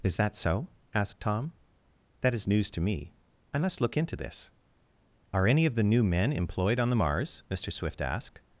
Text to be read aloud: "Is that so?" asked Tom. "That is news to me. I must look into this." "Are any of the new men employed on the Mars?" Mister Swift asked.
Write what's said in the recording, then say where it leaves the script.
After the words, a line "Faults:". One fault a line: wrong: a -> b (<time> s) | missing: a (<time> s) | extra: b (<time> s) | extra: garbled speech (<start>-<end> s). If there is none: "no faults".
"Is that so?" asked Tom. "That is news to me. I must look into this." "Are any of the new men employed on the Mars?" Mister Swift asked.
Faults:
no faults